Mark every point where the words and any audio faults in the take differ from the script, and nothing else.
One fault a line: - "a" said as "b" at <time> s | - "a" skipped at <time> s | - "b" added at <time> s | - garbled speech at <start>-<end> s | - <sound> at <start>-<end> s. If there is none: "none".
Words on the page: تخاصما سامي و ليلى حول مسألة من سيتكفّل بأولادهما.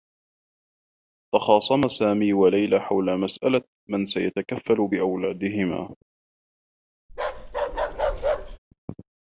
- bark at 7.1-8.6 s